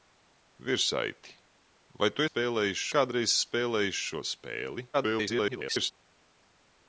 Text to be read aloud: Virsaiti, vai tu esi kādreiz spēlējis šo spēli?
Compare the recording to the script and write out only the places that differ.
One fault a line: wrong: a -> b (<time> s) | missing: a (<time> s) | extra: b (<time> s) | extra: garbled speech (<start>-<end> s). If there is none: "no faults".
wrong: esi -> spēlējis (2.3 s)
extra: garbled speech (4.9-5.9 s)